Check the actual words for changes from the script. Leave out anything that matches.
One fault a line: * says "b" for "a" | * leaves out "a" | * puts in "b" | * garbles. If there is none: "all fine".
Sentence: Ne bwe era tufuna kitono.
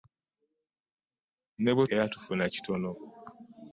all fine